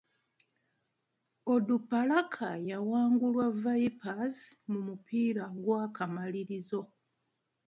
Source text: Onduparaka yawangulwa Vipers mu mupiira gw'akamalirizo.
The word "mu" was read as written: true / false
true